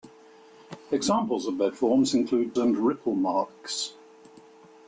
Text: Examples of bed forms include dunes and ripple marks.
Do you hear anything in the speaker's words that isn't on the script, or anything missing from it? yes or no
yes